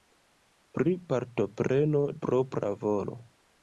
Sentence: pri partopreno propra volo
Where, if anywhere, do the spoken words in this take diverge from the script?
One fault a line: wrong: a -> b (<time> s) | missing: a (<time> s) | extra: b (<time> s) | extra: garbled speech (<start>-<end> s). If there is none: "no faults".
no faults